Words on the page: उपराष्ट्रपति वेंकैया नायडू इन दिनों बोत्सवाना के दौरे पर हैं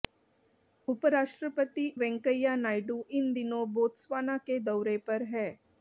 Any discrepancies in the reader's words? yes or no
no